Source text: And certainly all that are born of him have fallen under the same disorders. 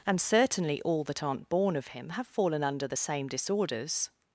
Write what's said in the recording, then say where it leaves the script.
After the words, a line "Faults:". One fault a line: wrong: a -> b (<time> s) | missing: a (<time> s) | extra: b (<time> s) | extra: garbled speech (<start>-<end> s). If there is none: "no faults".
And certainly all that aren't born of him have fallen under the same disorders.
Faults:
wrong: are -> aren't (1.2 s)